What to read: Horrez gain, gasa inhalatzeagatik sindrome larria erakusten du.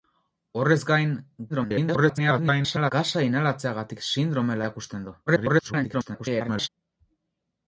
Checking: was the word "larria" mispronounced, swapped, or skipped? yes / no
yes